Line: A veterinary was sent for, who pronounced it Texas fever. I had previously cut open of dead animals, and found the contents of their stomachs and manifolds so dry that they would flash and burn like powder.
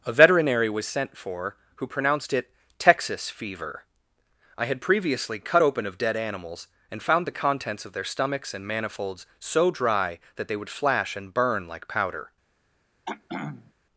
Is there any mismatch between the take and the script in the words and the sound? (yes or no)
yes